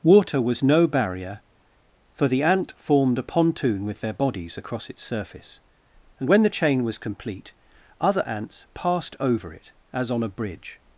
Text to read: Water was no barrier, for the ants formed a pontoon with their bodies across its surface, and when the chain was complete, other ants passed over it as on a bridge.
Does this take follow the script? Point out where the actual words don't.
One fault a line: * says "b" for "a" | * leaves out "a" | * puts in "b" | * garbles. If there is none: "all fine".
* says "ant" for "ants"